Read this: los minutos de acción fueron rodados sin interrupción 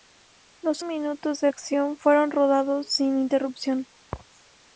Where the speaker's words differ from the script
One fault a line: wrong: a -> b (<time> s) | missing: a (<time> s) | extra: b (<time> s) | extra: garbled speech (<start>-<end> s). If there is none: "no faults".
no faults